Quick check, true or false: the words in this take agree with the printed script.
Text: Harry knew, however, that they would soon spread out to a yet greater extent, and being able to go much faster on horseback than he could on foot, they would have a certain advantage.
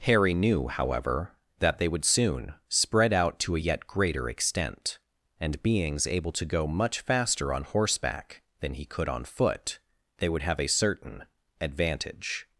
false